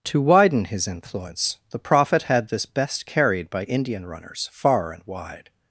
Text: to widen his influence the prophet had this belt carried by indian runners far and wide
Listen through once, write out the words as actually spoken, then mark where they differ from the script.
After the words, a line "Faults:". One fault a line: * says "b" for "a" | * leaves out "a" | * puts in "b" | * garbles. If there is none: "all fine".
to widen his influence the prophet had this best carried by indian runners far and wide
Faults:
* says "best" for "belt"